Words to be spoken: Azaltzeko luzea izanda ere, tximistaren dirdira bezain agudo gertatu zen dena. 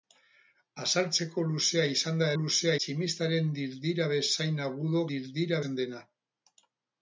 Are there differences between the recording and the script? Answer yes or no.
yes